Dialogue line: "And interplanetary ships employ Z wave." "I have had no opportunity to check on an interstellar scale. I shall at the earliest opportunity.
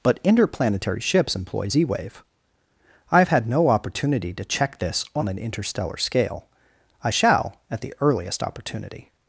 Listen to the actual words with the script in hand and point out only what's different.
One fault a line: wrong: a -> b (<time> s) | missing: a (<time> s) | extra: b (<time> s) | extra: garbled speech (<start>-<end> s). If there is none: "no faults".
wrong: And -> But (0.0 s)
extra: this (4.8 s)